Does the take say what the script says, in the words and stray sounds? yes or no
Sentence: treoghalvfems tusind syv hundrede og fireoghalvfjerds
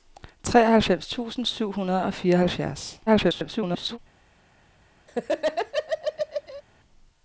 no